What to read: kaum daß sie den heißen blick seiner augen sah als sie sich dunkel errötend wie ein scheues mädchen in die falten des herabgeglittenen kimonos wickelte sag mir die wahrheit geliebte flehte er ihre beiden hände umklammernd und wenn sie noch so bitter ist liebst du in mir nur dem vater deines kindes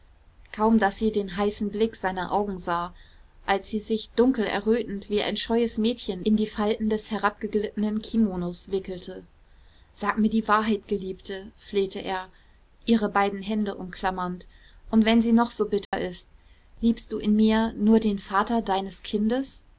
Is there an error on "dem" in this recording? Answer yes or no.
yes